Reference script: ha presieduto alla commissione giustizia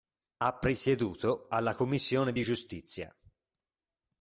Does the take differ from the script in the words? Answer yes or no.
yes